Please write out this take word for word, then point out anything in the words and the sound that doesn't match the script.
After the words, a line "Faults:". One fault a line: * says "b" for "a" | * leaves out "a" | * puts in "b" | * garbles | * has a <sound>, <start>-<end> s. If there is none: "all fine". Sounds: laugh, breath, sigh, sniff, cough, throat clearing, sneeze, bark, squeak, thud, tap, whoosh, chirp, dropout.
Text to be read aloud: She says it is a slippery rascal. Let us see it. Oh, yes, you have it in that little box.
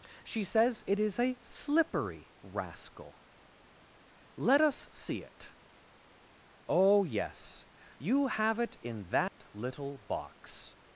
She says it is a slippery rascal. Let us see it. Oh, yes, you have it in that little box.
Faults:
* has a dropout, 9.3-9.4 s